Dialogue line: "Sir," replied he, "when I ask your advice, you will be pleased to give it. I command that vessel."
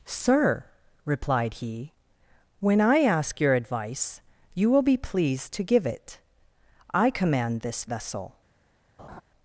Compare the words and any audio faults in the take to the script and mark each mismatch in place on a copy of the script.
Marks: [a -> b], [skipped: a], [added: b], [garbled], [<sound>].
"Sir," replied he, "when I ask your advice, you will be pleased to give it. I command [that -> this] vessel." [laugh]